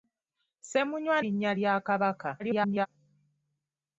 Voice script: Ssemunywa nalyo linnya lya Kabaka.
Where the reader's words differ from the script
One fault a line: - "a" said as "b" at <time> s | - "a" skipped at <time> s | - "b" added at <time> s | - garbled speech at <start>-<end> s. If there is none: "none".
- "nalyo" skipped at 1.2 s
- garbled speech at 2.4-2.9 s